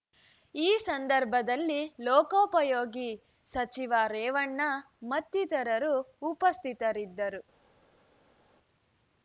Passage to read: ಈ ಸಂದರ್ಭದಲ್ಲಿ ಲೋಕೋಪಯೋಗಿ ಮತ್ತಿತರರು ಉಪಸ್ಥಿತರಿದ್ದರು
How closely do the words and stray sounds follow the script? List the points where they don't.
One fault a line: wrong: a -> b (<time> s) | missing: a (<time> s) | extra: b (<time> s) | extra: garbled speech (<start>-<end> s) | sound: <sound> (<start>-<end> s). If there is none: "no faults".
extra: ಸಚಿವ ರೇವಣ್ಣ (3.5 s)